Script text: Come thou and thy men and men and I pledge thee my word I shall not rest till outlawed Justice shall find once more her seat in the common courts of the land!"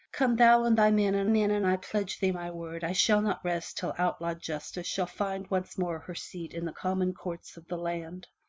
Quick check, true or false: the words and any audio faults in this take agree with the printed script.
true